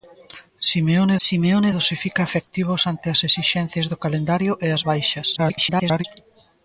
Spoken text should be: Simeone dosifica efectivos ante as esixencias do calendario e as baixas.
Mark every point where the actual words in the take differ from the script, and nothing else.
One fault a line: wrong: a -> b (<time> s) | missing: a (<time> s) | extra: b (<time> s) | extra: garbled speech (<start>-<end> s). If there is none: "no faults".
extra: simeone (1.3 s)
extra: garbled speech (5.4-6.0 s)